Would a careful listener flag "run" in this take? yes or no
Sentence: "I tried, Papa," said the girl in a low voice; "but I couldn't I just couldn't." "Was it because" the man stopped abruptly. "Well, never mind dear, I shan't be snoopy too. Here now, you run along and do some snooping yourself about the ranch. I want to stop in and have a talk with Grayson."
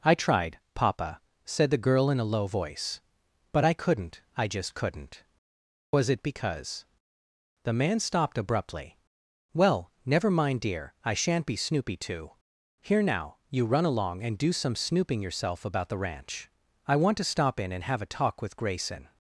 no